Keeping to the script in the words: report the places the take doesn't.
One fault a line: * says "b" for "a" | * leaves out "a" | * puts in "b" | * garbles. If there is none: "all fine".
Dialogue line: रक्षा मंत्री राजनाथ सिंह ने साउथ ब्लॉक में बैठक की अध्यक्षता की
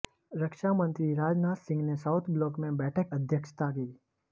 * leaves out "की"